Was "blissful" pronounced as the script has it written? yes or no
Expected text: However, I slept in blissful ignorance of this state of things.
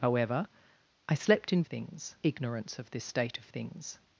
no